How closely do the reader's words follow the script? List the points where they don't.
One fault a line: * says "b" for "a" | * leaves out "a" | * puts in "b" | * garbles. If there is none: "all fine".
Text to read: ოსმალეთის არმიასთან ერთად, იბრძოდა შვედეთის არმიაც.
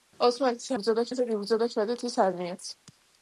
* says "იბრძოდა" for "არმიასთან"